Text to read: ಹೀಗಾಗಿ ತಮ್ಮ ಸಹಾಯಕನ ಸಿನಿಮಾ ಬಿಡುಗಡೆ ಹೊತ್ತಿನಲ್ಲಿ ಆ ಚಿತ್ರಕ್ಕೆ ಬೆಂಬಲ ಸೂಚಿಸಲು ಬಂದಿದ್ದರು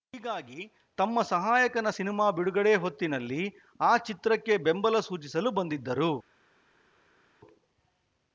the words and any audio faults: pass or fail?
pass